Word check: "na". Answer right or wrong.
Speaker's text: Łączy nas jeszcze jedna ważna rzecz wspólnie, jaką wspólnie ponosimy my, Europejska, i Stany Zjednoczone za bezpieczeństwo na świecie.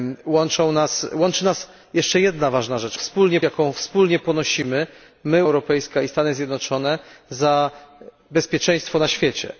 right